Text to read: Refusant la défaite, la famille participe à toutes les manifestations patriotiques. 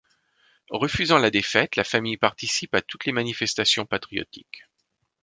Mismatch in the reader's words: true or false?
false